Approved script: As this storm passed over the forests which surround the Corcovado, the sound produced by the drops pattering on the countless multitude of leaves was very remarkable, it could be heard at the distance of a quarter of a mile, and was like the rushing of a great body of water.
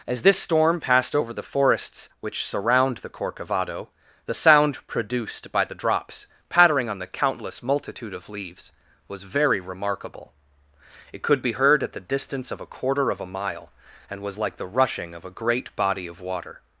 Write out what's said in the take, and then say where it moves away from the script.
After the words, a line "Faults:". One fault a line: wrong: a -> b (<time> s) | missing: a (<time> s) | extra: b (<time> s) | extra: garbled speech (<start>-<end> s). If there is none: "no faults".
As this storm passed over the forests which surround the Corcovado, the sound produced by the drops pattering on the countless multitude of leaves was very remarkable, it could be heard at the distance of a quarter of a mile, and was like the rushing of a great body of water.
Faults:
no faults